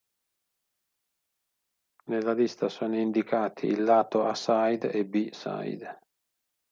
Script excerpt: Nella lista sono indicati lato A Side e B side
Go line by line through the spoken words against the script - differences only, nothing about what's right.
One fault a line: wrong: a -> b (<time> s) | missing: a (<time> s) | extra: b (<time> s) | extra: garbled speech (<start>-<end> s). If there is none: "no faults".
extra: il (3.6 s)